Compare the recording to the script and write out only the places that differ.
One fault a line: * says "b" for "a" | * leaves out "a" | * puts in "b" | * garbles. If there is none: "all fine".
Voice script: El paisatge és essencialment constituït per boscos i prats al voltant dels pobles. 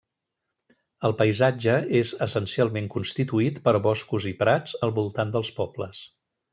all fine